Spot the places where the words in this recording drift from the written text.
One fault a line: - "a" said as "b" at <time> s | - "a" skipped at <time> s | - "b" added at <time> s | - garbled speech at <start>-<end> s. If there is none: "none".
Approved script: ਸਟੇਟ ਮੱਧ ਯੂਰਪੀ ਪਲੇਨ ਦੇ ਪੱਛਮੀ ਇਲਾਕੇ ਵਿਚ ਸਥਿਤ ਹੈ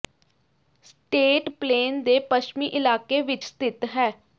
- "ਮੱਧ ਯੂਰਪੀ" skipped at 1.5 s